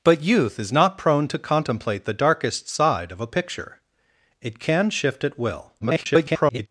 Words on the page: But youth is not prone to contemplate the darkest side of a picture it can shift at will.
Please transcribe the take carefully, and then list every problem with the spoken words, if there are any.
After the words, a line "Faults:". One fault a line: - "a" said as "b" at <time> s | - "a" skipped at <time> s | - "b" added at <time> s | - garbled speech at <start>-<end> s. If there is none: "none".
But youth is not prone to contemplate the darkest side of a picture it can shift at will. [garbled]
Faults:
- garbled speech at 5.8-6.7 s